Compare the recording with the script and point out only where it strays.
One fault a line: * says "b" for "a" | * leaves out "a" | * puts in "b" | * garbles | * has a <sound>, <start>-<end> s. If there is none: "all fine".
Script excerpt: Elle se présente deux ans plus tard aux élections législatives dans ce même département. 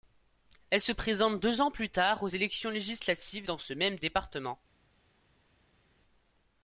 all fine